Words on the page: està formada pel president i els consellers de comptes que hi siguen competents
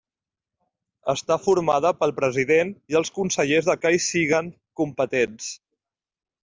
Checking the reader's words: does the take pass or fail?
fail